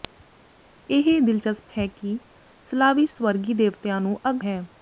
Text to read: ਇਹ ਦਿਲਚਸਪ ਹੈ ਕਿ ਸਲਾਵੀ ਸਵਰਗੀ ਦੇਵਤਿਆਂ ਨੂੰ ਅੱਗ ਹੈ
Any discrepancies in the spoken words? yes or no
no